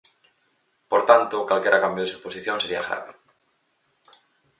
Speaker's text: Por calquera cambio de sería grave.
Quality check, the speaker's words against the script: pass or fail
fail